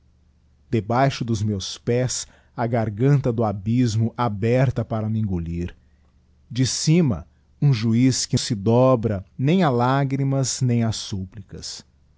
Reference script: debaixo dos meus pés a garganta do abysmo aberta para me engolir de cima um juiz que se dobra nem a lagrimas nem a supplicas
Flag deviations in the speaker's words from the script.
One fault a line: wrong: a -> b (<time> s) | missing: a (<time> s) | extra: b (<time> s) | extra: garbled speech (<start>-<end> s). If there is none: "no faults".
no faults